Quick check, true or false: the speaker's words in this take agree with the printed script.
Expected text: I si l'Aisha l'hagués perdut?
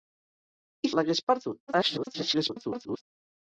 false